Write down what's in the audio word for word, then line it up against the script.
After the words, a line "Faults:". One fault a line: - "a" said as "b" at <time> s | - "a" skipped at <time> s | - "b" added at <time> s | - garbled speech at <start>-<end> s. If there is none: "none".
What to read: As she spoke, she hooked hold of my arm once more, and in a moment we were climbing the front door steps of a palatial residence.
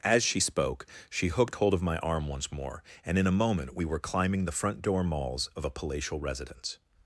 As she spoke, she hooked hold of my arm once more, and in a moment we were climbing the front door malls of a palatial residence.
Faults:
- "steps" said as "malls" at 5.0 s